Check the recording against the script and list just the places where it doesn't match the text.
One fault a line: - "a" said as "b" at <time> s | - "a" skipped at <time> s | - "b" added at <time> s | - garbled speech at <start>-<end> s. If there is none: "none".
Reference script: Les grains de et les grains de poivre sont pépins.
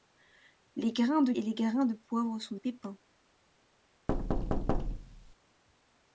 none